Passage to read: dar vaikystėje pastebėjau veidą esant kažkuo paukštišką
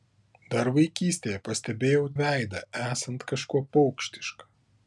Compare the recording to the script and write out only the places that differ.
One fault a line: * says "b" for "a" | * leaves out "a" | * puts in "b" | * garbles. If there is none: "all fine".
all fine